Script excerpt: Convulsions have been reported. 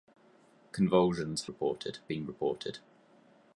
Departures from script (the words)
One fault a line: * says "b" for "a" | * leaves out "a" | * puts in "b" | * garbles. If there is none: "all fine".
* says "reported" for "have"